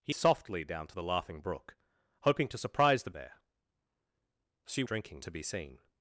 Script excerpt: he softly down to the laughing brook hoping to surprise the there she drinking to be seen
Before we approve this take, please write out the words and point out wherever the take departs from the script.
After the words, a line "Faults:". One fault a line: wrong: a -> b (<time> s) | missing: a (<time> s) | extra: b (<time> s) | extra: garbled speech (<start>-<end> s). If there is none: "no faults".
he softly down to the laughing brook hoping to surprise the there she drinking to be seen
Faults:
no faults